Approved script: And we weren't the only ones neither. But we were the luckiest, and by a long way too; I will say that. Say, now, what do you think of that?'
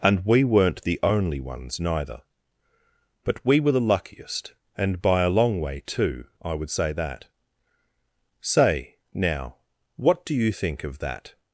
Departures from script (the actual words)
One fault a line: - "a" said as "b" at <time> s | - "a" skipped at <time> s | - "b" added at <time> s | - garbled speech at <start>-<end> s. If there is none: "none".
- "will" said as "would" at 6.5 s